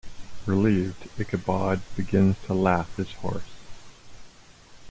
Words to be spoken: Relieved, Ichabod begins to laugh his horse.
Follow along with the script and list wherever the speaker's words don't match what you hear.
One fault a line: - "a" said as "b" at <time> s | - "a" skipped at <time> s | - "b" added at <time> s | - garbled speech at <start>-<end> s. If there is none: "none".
none